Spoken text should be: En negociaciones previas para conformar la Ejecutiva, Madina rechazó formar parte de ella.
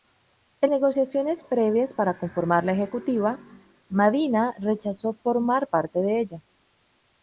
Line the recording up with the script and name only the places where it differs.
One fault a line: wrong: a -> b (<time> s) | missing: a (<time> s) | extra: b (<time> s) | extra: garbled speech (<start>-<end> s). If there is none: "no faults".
no faults